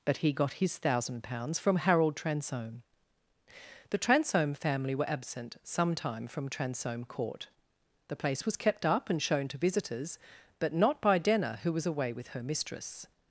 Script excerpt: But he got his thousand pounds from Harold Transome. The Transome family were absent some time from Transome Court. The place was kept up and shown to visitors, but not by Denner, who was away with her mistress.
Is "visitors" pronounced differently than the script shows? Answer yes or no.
no